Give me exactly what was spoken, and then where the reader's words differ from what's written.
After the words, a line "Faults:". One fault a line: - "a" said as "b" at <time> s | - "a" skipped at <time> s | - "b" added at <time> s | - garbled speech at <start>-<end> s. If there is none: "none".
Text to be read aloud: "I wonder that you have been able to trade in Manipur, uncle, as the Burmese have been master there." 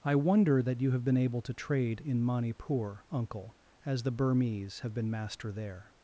"I wonder that you have been able to trade in Manipur, uncle, as the Burmese have been master there."
Faults:
none